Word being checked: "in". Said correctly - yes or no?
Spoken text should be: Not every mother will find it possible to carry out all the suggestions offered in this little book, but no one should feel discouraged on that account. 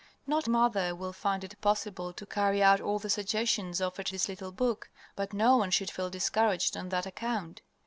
no